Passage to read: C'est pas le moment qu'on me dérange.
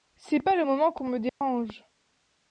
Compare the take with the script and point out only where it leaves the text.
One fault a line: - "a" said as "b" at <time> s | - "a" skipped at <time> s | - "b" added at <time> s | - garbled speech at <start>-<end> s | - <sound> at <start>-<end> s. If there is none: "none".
- dropout at 1.3-1.4 s